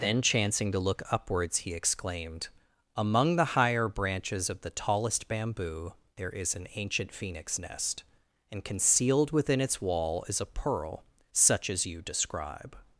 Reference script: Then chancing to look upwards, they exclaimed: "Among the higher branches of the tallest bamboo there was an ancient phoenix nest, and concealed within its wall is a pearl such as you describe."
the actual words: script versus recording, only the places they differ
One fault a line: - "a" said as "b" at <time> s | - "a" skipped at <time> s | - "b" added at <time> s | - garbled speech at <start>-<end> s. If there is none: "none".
- "they" said as "he" at 1.6 s
- "was" said as "is" at 6.3 s